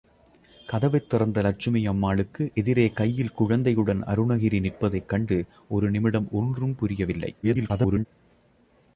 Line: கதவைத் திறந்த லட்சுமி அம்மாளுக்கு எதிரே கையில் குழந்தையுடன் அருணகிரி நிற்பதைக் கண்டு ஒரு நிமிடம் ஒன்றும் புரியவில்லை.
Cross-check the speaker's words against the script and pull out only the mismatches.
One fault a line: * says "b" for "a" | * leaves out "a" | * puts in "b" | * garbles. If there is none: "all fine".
* garbles